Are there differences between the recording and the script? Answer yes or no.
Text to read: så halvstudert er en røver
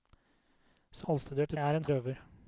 no